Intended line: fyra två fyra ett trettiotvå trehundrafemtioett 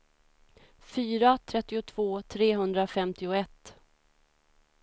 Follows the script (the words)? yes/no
no